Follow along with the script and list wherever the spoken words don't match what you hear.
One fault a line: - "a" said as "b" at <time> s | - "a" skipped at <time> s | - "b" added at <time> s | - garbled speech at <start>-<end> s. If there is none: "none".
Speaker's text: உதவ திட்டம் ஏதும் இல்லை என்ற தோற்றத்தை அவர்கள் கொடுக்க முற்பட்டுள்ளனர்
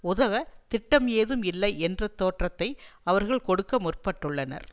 none